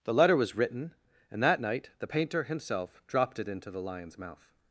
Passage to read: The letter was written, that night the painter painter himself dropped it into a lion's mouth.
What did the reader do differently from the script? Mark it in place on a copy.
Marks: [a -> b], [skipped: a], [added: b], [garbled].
The letter was written, [added: and] that night the painter [skipped: painter] himself dropped it into [a -> the] lion's mouth.